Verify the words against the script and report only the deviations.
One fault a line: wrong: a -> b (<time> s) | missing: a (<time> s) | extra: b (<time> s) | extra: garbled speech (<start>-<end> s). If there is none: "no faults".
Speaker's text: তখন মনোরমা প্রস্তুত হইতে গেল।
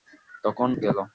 missing: মনোরমা প্রস্তুত হইতে (0.7 s)